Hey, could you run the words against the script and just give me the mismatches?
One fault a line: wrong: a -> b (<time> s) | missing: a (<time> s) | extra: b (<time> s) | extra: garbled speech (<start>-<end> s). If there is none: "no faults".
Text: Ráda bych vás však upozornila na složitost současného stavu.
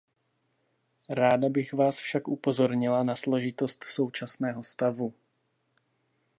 no faults